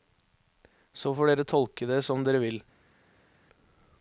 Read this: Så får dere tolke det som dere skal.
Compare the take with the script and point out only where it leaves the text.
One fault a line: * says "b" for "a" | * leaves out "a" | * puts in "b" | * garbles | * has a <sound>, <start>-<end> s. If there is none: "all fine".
* says "vil" for "skal"